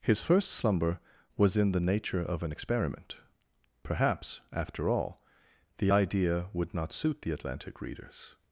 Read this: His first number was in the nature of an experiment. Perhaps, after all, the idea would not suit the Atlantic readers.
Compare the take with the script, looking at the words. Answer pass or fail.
fail